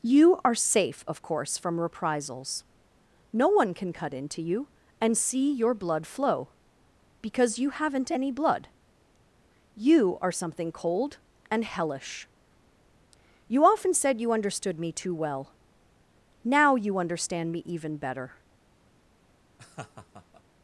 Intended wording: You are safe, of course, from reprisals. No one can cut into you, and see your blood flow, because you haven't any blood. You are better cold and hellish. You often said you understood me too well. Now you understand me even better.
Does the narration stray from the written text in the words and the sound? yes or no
yes